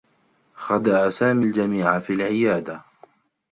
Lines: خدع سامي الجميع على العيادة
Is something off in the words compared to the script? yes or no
yes